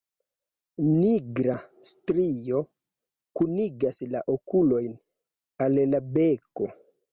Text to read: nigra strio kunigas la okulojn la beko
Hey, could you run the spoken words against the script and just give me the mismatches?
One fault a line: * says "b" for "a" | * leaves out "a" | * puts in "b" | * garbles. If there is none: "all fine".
* puts in "al"